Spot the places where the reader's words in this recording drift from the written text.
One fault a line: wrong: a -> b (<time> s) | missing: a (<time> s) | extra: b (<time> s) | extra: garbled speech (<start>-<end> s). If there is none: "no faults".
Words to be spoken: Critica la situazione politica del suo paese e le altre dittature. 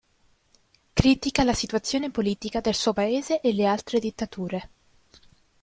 no faults